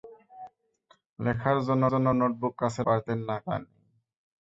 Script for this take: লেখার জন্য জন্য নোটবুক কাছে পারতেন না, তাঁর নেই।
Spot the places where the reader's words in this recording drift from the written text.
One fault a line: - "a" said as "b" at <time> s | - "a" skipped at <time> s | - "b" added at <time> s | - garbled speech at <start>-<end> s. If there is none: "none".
none